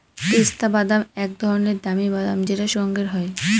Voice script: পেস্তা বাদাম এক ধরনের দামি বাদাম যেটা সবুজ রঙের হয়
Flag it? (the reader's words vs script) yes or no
yes